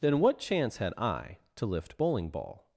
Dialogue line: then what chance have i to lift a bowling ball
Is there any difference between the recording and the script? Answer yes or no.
yes